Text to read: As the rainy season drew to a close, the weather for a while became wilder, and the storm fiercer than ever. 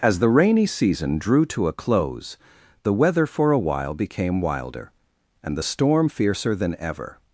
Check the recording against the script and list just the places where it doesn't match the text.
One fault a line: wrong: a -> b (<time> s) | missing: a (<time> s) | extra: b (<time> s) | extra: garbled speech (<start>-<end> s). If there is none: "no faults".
no faults